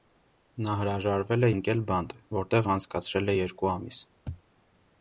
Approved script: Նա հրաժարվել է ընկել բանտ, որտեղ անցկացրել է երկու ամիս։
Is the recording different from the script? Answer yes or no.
no